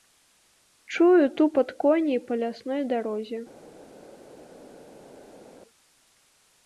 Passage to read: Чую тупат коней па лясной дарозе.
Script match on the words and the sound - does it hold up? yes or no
yes